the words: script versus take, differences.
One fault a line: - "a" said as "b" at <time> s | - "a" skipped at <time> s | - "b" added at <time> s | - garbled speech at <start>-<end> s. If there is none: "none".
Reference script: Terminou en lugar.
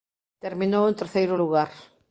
- "terceiro" added at 0.9 s